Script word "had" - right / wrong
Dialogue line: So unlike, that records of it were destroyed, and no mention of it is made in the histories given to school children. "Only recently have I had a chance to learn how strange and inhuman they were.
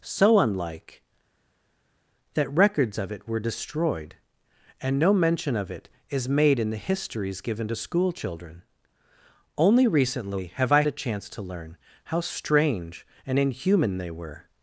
wrong